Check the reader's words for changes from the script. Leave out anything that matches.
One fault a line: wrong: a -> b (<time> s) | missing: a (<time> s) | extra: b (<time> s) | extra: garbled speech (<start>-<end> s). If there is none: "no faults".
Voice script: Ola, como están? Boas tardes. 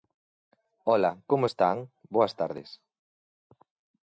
no faults